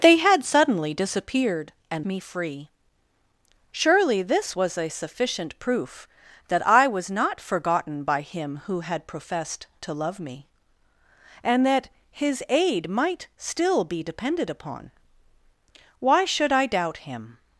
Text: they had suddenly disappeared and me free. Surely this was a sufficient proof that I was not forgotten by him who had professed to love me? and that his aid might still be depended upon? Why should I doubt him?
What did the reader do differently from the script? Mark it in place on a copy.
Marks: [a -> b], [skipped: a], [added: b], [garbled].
they had suddenly disappeared and me free. Surely this was a sufficient proof that I was not forgotten by him who had professed to love me? and that his aid might still be depended upon? Why should I doubt him?